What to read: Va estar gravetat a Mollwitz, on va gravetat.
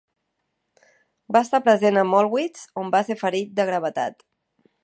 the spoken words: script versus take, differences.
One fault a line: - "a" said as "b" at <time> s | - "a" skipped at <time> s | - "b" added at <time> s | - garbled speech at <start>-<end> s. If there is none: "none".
- "gravetat" said as "present" at 1.7 s
- "ser ferit de" added at 3.1 s